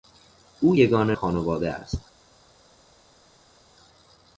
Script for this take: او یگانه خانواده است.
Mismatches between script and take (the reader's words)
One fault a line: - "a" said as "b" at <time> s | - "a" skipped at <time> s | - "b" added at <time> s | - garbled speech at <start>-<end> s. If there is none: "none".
none